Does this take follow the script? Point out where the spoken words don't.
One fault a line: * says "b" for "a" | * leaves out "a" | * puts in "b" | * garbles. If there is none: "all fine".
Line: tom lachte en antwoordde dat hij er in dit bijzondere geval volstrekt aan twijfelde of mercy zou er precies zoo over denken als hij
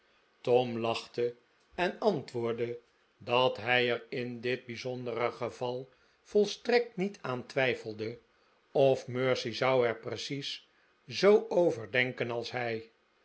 * puts in "niet"